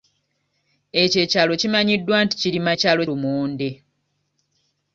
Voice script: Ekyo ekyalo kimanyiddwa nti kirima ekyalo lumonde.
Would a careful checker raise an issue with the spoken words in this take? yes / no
no